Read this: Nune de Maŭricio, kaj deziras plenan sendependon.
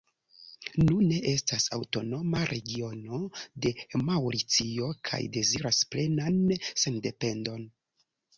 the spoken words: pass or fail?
fail